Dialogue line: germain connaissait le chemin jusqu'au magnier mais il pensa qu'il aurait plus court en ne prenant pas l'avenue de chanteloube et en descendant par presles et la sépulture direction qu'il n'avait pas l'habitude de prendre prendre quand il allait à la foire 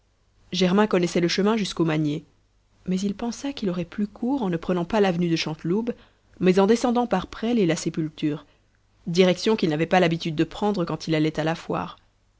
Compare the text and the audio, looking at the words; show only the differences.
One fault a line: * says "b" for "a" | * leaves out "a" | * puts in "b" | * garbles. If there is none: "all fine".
* says "mais" for "et"
* leaves out "prendre"